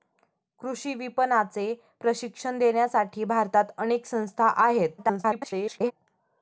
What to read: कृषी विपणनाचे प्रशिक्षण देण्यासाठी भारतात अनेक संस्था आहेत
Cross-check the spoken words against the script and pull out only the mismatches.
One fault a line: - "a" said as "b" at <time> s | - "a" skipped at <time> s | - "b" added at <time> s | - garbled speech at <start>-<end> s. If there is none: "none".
- garbled speech at 5.0-5.9 s